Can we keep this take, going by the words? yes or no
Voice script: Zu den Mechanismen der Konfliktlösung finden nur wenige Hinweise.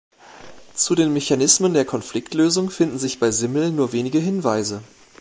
no